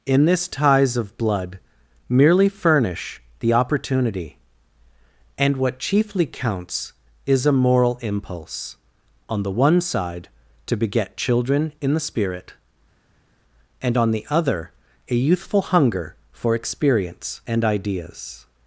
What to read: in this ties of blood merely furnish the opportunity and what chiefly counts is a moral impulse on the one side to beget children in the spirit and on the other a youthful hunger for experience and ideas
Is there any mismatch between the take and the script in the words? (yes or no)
no